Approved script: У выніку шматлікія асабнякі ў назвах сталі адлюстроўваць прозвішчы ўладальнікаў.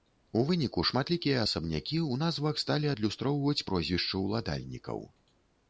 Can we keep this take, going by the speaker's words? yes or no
yes